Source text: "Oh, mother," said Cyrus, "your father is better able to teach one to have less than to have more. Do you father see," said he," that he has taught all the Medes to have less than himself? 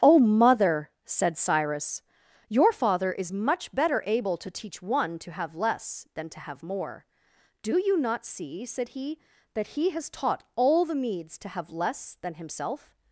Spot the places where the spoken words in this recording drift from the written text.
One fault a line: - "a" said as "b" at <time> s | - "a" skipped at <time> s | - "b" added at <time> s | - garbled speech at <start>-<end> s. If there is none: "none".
- "much" added at 3.3 s
- "father" said as "not" at 8.0 s